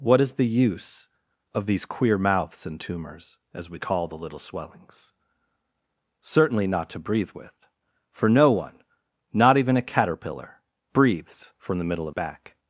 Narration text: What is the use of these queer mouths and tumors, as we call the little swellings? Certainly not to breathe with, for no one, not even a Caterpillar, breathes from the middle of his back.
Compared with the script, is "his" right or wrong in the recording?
wrong